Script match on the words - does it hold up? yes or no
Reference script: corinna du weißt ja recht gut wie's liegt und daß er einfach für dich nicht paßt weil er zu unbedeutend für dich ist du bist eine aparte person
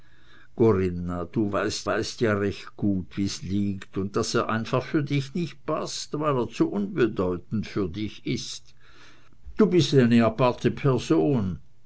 no